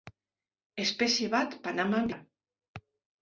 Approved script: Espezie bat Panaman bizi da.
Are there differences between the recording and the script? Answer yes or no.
yes